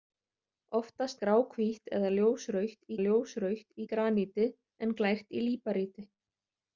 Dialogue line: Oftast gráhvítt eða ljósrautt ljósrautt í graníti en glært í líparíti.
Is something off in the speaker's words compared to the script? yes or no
no